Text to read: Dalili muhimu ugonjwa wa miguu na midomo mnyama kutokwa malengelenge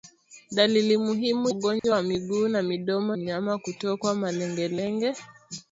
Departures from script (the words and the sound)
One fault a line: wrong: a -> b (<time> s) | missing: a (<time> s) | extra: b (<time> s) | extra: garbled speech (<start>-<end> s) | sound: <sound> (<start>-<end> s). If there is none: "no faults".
sound: dropout (1.8-1.8 s)